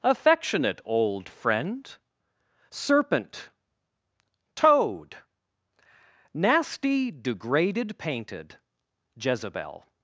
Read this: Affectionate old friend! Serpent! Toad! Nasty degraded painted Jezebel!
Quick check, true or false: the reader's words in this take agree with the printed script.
true